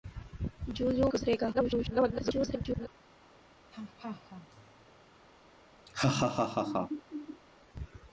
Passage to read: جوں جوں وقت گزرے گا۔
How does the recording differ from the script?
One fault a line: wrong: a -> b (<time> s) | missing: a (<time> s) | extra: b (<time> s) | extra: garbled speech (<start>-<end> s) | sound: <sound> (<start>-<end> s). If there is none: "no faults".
missing: وقت (1.1 s)
extra: garbled speech (1.5-2.9 s)
sound: laugh (3.7-4.9 s)
sound: laugh (5.9-7.4 s)